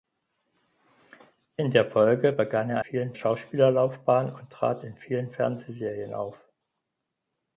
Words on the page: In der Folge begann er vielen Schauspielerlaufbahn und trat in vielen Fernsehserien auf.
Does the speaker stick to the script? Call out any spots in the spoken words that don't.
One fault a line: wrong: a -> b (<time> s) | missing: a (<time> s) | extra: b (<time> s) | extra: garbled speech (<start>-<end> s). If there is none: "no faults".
no faults